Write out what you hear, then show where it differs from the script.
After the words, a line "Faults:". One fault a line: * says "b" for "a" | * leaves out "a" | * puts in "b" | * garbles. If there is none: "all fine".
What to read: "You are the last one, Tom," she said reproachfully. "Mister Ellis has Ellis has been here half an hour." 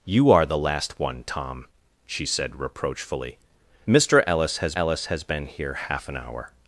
"You are the last one, Tom," she said reproachfully. "Mister Ellis has Ellis has been here half an hour."
Faults:
all fine